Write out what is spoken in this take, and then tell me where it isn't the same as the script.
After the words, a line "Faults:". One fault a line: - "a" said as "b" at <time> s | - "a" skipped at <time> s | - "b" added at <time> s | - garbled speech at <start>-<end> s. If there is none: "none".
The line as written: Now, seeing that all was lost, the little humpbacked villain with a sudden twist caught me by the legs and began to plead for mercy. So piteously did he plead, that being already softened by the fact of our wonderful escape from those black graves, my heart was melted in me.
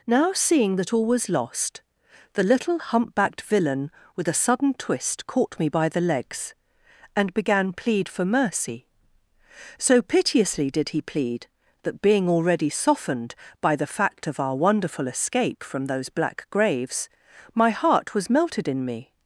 Now, seeing that all was lost, the little humpbacked villain with a sudden twist caught me by the legs and began plead for mercy. So piteously did he plead, that being already softened by the fact of our wonderful escape from those black graves, my heart was melted in me.
Faults:
- "to" skipped at 7.7 s